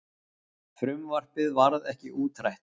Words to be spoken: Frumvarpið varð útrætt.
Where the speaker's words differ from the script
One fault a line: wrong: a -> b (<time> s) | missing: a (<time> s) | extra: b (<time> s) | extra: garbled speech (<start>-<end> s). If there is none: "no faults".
extra: ekki (1.9 s)